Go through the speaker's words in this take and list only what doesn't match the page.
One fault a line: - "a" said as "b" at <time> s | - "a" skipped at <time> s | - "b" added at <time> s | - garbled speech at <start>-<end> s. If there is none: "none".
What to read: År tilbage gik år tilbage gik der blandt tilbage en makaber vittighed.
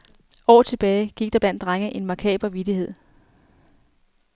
- "år tilbage gik" skipped at 1.3 s
- "tilbage" said as "drenge" at 1.6 s